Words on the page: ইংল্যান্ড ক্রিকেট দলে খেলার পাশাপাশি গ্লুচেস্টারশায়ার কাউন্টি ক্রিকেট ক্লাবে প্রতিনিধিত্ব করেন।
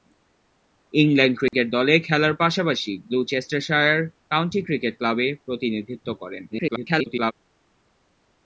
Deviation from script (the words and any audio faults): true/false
true